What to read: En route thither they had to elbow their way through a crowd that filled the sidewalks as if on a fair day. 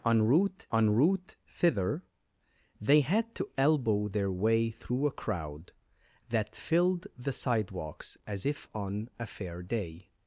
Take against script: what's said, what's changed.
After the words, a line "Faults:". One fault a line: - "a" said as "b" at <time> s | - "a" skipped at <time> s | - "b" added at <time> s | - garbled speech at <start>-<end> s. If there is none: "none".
En route en route thither they had to elbow their way through a crowd that filled the sidewalks as if on a fair day.
Faults:
- "en route" added at 0.7 s